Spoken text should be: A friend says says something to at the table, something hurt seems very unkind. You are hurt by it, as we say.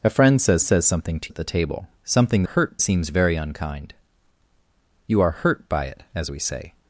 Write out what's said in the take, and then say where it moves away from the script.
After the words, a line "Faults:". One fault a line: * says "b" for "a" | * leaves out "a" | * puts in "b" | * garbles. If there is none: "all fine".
A friend says says something to at the table, something hurt seems very unkind. You are hurt by it, as we say.
Faults:
all fine